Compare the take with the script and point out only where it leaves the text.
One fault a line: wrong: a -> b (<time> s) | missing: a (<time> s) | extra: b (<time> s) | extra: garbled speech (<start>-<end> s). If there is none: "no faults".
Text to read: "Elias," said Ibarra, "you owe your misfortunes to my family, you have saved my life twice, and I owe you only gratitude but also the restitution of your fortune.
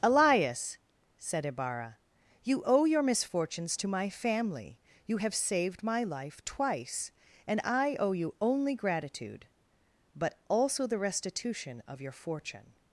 no faults